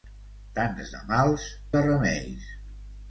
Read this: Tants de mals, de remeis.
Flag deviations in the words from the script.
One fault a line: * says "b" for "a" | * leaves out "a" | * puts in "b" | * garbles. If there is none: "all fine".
all fine